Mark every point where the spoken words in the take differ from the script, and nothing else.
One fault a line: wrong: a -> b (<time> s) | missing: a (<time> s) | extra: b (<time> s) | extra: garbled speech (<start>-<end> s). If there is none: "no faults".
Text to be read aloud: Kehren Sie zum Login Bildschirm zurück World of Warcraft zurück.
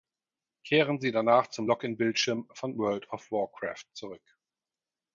extra: danach (1.1 s)
wrong: zurück -> von (2.5 s)